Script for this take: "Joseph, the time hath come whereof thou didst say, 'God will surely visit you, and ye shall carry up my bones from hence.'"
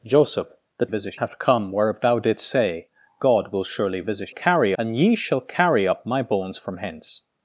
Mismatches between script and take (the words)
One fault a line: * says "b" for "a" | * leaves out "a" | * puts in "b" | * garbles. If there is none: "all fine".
* says "visit" for "time"
* says "carry" for "you"